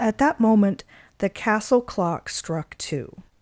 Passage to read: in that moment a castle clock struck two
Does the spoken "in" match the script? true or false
false